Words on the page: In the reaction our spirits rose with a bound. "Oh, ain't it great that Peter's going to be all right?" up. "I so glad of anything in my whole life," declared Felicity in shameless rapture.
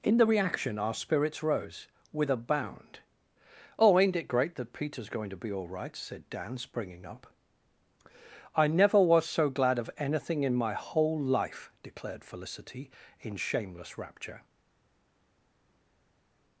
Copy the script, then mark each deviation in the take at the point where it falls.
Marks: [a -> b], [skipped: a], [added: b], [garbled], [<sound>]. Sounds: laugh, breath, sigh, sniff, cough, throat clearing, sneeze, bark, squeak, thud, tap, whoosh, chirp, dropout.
In the reaction our spirits rose with a bound. "Oh, ain't it great that Peter's going to be all right?" [added: said Dan springing] up. "I [added: never was] so glad of anything in my whole life," declared Felicity in shameless rapture.